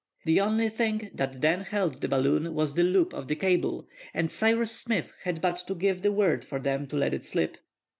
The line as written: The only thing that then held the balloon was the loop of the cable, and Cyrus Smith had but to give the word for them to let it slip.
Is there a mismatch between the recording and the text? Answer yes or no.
no